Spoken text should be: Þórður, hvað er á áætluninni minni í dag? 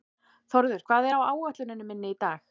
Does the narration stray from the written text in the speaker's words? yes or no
no